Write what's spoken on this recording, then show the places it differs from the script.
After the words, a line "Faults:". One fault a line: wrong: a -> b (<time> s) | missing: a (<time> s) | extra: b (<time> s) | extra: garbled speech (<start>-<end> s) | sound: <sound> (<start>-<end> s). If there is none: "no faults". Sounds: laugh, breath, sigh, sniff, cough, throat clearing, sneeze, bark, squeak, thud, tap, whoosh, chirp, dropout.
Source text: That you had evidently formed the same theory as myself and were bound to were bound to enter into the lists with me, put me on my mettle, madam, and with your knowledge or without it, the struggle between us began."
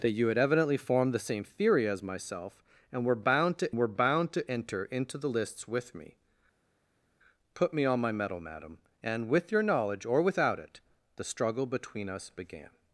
That you had evidently formed the same theory as myself and were bound to were bound to enter into the lists with me, put me on my mettle, madam, and with your knowledge or without it, the struggle between us began."
Faults:
no faults